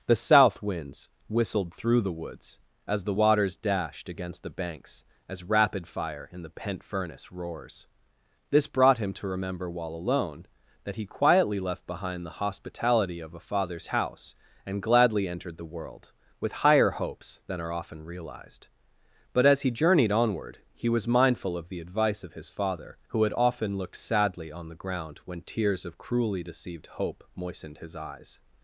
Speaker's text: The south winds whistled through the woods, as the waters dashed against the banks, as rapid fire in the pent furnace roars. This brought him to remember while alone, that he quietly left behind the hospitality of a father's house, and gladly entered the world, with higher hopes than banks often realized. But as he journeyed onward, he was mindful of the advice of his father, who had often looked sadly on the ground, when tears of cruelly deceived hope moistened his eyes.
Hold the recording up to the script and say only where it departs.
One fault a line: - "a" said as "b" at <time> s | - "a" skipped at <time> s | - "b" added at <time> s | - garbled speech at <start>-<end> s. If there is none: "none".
- "banks" said as "are" at 17.6 s